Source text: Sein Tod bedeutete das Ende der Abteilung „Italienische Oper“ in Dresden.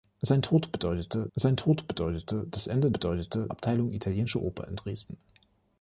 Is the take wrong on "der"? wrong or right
wrong